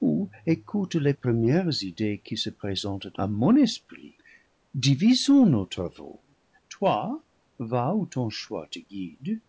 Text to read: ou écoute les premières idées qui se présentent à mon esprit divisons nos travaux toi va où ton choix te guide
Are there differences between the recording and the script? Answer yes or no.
no